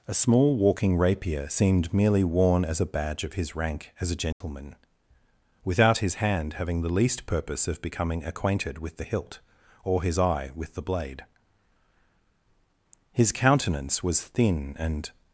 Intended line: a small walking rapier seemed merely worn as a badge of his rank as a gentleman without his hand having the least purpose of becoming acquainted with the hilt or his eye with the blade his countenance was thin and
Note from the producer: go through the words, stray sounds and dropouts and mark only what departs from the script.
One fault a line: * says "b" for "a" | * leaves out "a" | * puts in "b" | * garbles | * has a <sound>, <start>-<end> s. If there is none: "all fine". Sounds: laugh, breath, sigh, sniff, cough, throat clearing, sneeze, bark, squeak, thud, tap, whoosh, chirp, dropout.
* has a dropout, 4.3-4.4 s